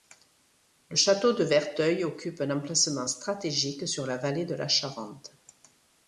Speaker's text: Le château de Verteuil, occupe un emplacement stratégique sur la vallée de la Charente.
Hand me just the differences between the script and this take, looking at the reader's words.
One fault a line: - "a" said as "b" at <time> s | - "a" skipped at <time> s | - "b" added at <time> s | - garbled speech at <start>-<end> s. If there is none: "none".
none